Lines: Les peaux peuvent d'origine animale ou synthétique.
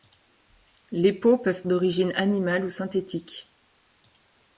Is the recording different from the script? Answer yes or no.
no